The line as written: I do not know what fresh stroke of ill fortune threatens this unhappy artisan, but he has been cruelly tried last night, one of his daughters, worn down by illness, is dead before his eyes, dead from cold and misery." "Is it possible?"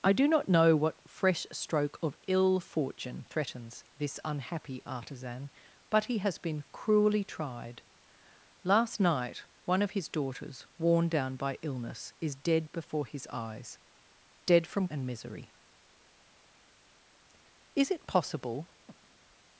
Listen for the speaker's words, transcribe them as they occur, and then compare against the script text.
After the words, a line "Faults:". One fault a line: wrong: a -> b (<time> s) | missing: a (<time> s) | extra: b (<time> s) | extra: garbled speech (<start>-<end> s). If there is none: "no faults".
I do not know what fresh stroke of ill fortune threatens this unhappy artisan, but he has been cruelly tried last night, one of his daughters, worn down by illness, is dead before his eyes, dead from and misery." "Is it possible?"
Faults:
missing: cold (14.9 s)